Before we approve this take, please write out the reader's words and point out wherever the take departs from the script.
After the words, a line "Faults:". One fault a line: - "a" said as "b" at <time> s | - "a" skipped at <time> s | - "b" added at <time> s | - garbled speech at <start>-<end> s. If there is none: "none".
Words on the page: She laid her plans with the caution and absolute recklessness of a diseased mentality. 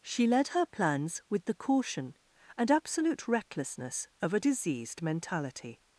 She led her plans with the caution and absolute recklessness of a diseased mentality.
Faults:
- "laid" said as "led" at 0.3 s